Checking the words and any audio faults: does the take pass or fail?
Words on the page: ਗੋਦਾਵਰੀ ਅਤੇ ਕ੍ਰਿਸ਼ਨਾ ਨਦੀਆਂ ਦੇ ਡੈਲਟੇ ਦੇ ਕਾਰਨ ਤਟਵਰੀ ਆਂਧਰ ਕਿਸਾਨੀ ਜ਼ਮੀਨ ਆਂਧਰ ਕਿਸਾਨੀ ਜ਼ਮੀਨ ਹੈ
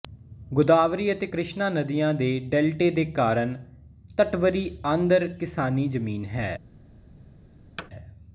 fail